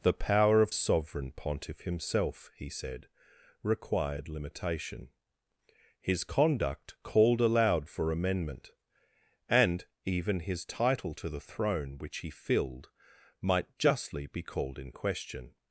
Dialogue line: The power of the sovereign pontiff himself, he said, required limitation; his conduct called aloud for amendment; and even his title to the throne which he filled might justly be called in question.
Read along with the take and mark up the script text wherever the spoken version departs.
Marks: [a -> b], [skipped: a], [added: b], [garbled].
The power of [skipped: the] sovereign pontiff himself, he said, required limitation; his conduct called aloud for amendment; and even his title to the throne which he filled might justly be called in question.